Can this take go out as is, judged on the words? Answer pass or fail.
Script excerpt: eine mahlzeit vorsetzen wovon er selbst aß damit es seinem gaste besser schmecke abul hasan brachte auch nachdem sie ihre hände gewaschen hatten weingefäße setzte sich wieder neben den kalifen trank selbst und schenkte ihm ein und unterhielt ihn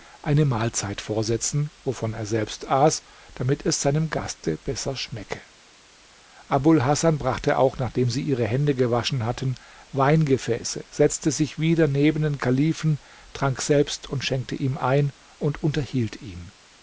pass